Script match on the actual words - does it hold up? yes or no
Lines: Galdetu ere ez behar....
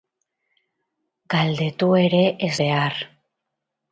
yes